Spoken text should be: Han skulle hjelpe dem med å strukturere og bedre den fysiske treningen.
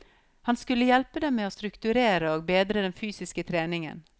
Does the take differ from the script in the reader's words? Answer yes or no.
no